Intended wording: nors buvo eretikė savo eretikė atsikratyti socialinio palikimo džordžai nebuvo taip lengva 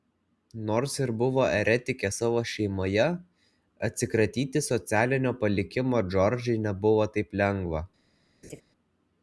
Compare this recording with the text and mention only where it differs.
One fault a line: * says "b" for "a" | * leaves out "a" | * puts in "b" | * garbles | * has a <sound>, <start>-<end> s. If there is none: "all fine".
* puts in "ir"
* says "šeimoje" for "eretikė"
* has a laugh, 8.4-8.6 s